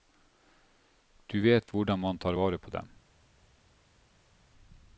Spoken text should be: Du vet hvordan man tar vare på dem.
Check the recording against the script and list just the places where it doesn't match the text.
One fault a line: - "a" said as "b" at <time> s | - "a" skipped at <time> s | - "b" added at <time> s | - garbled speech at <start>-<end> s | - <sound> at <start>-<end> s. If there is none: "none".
none